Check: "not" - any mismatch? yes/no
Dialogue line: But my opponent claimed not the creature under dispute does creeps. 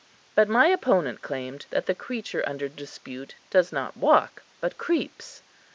yes